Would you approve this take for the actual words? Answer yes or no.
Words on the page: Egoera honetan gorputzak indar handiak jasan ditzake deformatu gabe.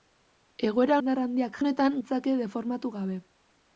no